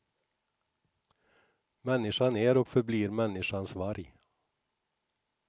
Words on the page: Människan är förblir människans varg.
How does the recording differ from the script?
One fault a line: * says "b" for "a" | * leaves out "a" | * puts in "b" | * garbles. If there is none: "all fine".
* puts in "och"